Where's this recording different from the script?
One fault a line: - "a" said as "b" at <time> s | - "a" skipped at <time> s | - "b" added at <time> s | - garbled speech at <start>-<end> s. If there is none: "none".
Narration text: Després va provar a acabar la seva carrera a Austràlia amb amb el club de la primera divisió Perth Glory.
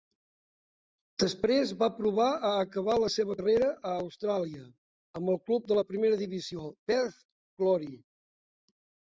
- "amb" skipped at 5.3 s